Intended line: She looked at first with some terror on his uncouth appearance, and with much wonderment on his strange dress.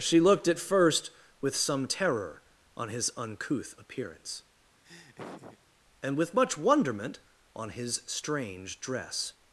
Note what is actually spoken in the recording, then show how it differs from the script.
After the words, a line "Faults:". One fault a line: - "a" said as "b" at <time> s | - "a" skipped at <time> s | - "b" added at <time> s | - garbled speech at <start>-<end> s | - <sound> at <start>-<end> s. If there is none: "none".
She looked at first with some terror on his uncouth appearance, and with much wonderment on his strange dress.
Faults:
- laugh at 4.8-5.6 s